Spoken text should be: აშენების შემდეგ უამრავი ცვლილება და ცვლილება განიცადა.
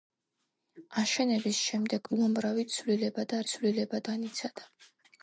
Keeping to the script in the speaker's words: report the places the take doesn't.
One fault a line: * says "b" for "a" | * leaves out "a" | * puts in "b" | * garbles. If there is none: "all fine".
all fine